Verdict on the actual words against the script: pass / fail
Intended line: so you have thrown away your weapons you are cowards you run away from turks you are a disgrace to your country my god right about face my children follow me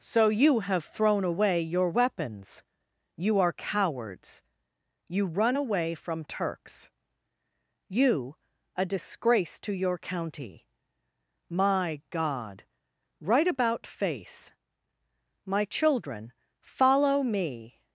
fail